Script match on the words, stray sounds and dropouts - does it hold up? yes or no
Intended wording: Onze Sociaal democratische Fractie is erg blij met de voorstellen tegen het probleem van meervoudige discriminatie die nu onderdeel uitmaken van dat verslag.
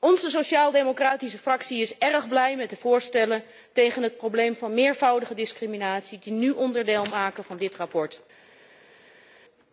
no